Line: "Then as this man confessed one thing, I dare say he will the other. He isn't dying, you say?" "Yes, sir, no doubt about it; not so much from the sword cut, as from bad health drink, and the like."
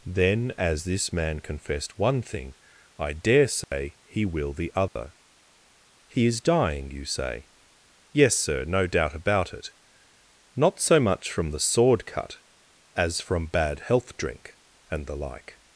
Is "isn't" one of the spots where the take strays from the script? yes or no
yes